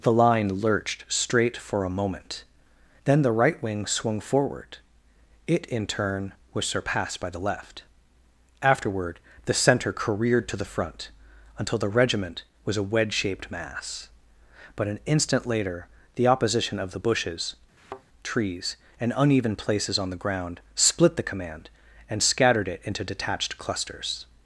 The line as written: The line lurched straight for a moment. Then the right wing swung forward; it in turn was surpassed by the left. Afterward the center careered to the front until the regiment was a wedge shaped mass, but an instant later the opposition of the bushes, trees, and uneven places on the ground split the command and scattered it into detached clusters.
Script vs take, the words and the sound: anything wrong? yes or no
yes